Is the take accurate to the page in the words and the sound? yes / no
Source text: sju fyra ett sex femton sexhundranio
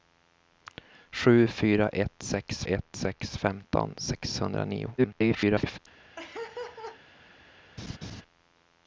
no